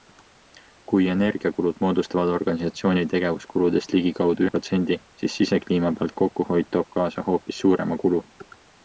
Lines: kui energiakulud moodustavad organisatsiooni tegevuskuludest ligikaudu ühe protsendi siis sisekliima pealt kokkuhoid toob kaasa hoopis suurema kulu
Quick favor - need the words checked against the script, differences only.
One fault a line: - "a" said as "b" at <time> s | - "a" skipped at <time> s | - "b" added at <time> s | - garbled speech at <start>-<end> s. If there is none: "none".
- "ühe" skipped at 4.5 s